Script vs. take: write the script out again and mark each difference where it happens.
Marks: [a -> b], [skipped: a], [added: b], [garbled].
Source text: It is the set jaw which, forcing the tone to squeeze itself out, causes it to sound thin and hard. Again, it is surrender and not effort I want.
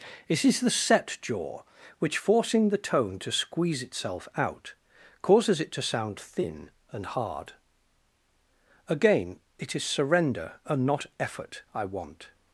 It is the set jaw which, forcing the tone to squeeze itself out, causes it to sound thin and hard. Again, it is surrender and not effort I want.